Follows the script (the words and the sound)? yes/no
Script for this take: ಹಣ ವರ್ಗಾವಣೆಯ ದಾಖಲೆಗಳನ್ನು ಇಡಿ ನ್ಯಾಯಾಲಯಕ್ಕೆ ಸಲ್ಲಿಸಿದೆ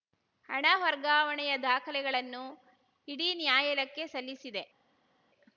yes